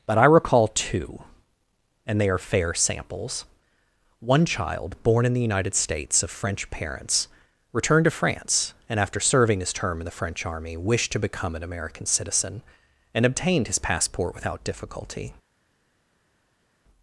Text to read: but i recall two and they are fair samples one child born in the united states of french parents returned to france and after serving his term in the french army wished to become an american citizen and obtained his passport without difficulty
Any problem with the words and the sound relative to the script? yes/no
no